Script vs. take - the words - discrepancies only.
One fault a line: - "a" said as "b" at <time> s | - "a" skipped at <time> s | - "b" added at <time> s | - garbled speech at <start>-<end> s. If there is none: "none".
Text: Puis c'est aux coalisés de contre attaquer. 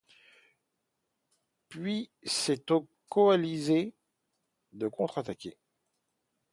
none